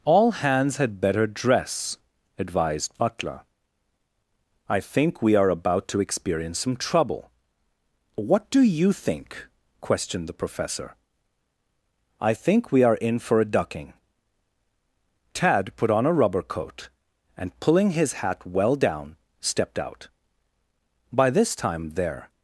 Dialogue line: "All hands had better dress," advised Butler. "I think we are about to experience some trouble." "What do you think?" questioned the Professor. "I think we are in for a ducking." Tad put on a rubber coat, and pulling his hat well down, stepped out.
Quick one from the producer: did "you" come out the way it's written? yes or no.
yes